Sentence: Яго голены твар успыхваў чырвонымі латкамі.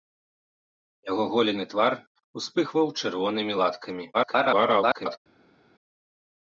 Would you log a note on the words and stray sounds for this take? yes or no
yes